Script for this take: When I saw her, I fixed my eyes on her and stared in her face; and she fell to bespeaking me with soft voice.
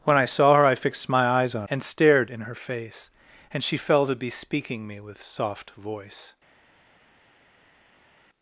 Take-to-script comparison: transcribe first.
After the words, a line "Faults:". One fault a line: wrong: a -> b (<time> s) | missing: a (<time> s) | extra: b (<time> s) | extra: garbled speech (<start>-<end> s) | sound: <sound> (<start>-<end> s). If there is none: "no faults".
When I saw her, I fixed my eyes on and stared in her face; and she fell to bespeaking me with soft voice.
Faults:
missing: her (1.7 s)